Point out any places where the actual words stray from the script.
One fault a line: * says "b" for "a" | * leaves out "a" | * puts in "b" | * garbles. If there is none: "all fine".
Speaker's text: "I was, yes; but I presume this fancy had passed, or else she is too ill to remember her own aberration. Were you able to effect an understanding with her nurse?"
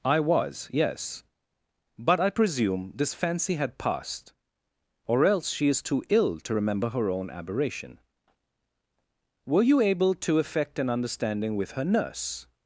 all fine